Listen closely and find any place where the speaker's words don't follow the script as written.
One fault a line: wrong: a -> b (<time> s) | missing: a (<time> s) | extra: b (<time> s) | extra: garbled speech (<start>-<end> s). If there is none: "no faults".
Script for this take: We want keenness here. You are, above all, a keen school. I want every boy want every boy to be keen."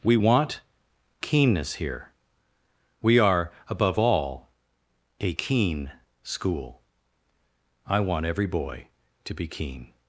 wrong: You -> We (3.0 s)
missing: want every boy (8.9 s)